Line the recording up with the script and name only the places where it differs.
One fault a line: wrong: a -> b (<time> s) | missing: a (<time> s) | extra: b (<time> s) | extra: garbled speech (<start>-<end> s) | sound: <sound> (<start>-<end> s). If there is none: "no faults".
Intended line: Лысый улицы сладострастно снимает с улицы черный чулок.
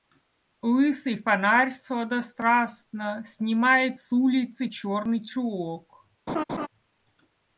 wrong: улицы -> фонарь (1.2 s)
sound: laugh (6.3-6.7 s)